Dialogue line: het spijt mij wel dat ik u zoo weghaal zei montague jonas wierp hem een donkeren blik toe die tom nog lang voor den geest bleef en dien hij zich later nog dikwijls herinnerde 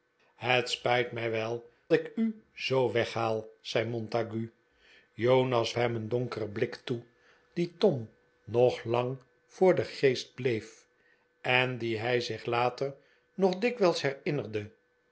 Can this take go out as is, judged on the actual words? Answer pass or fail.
fail